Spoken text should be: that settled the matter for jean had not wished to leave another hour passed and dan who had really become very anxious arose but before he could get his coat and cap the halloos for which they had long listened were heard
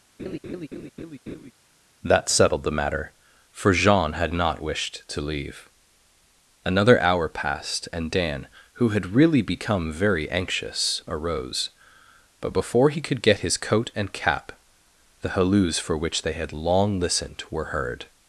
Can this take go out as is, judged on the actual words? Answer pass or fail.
pass